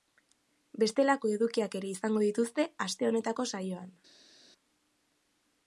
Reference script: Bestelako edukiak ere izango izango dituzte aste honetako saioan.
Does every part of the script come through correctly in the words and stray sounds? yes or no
no